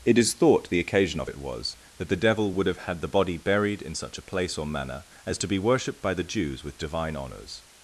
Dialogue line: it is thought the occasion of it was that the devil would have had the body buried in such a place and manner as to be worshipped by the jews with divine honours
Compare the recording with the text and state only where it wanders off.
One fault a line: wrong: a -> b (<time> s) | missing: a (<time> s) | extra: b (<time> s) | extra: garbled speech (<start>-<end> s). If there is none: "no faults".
wrong: and -> or (4.6 s)